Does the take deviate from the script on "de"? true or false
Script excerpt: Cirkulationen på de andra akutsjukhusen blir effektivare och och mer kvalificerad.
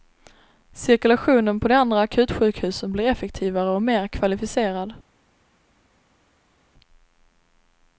false